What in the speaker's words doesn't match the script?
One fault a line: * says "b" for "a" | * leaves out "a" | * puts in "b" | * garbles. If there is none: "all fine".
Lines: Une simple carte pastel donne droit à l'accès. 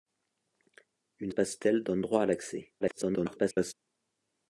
* leaves out "simple carte"
* garbles